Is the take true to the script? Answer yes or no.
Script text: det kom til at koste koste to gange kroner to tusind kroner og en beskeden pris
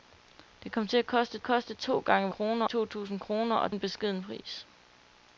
yes